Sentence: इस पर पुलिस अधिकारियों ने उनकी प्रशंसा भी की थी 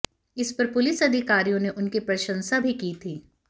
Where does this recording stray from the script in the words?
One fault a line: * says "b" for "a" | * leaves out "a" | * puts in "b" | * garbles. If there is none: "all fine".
all fine